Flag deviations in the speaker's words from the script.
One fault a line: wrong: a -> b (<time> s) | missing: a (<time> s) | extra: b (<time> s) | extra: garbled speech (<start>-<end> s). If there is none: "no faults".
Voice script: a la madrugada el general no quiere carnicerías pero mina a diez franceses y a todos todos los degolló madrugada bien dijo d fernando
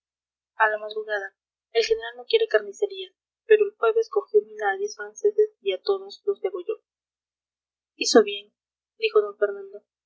extra: el jueves cogió (3.6 s)
missing: todos (6.2 s)
wrong: madrugada -> hizo (7.9 s)